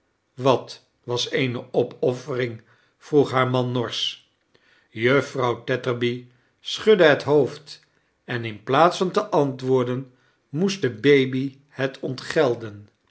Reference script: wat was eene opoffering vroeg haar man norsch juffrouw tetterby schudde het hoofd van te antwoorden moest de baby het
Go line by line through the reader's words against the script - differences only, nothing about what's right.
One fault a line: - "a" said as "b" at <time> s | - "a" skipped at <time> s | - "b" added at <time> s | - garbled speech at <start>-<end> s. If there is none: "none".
- "en in plaats" added at 8.2 s